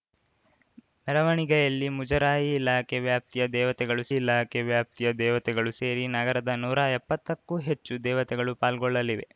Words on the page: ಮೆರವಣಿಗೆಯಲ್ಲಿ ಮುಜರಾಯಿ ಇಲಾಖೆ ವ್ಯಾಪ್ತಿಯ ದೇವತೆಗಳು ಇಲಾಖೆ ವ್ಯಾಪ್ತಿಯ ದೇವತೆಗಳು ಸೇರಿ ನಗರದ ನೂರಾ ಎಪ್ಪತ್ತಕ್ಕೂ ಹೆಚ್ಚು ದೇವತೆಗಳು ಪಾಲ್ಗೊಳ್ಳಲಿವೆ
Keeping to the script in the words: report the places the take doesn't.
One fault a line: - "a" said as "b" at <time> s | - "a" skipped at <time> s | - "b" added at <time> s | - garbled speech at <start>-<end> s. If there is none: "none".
none